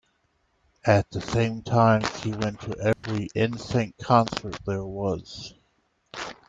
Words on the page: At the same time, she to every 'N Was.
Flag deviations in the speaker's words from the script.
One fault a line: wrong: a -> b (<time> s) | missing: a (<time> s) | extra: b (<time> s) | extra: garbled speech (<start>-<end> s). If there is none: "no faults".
extra: went (2.3 s)
extra: Sync concert there (3.6 s)